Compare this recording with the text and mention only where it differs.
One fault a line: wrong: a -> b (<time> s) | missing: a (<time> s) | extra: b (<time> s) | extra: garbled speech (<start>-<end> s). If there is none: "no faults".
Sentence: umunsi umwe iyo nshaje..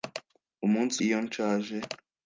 missing: umwe (1.0 s)